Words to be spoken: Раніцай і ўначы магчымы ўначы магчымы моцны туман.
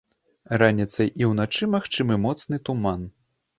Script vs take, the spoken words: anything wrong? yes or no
yes